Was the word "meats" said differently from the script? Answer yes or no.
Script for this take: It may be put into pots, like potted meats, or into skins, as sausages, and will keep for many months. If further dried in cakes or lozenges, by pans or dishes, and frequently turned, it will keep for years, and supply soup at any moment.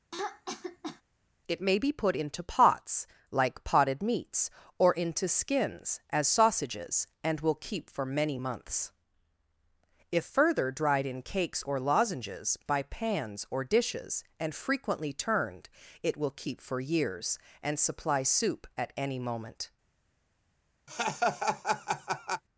no